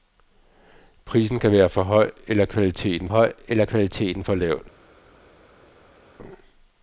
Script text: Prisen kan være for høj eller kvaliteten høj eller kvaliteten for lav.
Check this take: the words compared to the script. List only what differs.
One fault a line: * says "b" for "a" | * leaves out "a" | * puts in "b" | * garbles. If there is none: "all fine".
all fine